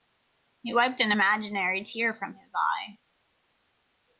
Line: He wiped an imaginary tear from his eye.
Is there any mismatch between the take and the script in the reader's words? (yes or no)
no